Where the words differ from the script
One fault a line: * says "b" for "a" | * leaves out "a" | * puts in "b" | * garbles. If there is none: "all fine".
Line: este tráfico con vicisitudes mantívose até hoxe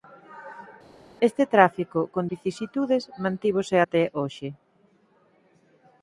all fine